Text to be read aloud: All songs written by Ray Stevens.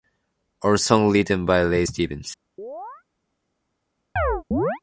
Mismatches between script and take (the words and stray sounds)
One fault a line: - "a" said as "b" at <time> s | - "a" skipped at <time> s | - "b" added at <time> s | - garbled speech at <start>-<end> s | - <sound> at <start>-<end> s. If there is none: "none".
- chirp at 2.6-3.0 s
- chirp at 4.2-4.8 s